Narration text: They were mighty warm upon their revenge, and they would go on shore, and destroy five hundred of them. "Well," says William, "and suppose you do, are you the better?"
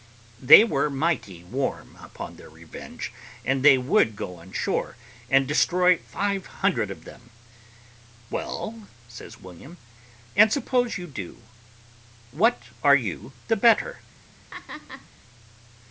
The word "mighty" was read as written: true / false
true